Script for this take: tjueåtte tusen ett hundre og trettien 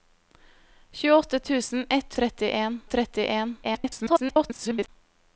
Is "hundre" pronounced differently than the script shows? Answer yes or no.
yes